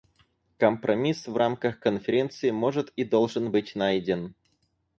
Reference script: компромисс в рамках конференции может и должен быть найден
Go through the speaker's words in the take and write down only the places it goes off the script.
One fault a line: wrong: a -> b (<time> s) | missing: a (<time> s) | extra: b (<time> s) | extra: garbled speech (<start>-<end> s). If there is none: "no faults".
no faults